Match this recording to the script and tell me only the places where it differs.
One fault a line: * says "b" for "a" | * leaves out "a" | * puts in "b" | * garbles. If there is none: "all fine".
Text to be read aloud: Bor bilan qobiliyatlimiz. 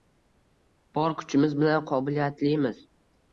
* puts in "kuchimiz"